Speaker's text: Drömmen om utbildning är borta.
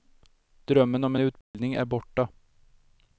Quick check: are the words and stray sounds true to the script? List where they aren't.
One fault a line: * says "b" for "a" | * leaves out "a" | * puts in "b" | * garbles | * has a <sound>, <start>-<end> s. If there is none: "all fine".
* has a dropout, 1.4-1.5 s